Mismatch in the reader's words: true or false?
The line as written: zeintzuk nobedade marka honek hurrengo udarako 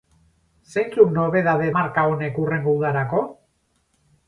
false